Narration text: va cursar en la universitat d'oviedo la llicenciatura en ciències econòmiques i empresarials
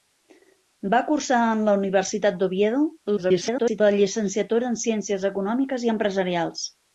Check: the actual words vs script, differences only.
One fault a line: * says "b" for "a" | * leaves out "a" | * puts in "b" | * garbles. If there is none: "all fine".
* garbles